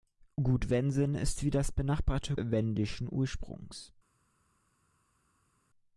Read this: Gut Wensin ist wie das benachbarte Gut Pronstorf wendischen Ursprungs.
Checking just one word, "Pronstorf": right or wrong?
wrong